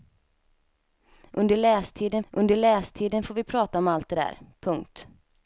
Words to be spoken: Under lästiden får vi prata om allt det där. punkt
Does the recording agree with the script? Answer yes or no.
no